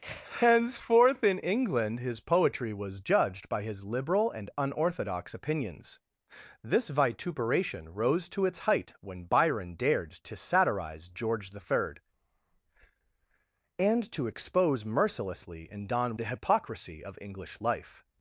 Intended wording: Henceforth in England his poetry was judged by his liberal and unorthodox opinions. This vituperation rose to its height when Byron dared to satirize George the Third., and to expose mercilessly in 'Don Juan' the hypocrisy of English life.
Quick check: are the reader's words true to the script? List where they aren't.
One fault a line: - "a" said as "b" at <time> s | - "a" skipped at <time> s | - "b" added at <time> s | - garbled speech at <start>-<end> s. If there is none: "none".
- "Juan" skipped at 16.1 s